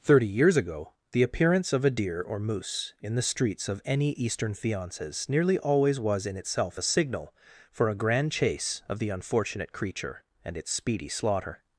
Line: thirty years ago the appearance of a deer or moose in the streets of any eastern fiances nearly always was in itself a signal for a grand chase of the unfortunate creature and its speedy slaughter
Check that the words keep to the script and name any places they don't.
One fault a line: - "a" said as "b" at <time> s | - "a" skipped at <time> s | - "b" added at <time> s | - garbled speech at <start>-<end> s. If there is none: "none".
none